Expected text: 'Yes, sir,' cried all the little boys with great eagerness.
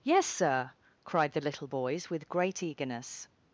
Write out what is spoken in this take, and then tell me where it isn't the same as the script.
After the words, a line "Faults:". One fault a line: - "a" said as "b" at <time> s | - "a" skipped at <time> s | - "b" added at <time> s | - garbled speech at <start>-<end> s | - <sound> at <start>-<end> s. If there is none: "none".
'Yes, sir,' cried the little boys with great eagerness.
Faults:
- "all" skipped at 1.3 s